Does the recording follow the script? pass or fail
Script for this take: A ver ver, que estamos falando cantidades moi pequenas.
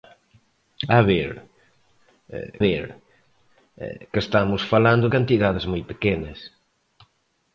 pass